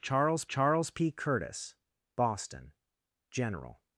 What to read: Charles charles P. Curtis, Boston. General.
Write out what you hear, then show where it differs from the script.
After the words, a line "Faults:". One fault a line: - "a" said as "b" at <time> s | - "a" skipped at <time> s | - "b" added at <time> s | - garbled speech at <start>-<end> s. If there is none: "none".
Charles charles P. Curtis, Boston. General.
Faults:
none